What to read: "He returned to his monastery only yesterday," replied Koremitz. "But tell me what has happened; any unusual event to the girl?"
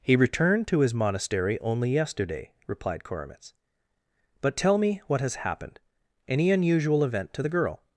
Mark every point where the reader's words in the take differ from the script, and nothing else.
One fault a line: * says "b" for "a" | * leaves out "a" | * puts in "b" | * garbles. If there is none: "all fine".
all fine